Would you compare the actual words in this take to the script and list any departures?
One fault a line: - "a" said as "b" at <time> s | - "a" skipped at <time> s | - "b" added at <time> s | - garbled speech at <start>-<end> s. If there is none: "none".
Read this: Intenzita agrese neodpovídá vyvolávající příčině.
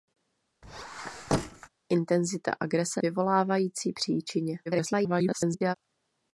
- "neodpovídá" skipped at 3.0 s
- garbled speech at 4.7-5.8 s